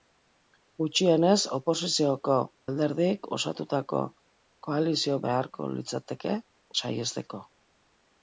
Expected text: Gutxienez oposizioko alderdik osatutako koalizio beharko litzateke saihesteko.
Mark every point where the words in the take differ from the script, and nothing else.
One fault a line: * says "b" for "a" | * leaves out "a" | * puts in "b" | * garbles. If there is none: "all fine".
all fine